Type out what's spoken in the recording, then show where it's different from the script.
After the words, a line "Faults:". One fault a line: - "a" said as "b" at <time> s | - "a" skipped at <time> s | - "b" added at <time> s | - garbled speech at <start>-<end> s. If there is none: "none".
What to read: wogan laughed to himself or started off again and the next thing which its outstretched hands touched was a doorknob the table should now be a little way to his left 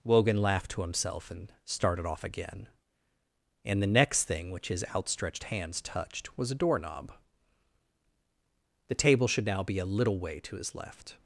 wogan laughed to himself and started off again and the next thing which his outstretched hands touched was a doorknob the table should now be a little way to his left
Faults:
- "or" said as "and" at 1.3 s
- "its" said as "his" at 4.7 s